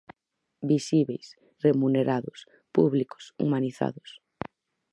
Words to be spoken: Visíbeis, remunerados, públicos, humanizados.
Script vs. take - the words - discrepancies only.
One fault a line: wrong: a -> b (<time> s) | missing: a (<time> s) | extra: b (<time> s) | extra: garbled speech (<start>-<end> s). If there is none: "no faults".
no faults